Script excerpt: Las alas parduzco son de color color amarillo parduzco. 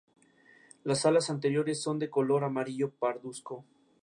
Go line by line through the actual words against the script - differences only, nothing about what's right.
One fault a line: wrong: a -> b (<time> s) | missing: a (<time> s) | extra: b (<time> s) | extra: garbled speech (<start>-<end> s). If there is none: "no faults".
wrong: parduzco -> anteriores (1.3 s)
missing: color (2.4 s)